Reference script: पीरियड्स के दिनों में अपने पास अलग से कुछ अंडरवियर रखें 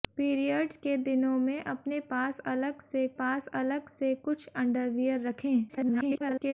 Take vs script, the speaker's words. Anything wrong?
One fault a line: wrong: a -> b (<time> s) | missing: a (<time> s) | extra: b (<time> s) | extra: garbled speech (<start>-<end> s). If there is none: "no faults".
extra: पास अलग से (3.2 s)
extra: garbled speech (5.7-6.5 s)